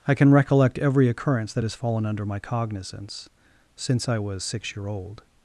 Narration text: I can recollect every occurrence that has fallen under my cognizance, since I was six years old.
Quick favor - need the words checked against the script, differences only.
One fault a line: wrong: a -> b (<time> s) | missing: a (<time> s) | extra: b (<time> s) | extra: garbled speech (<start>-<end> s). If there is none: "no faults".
wrong: years -> year (4.7 s)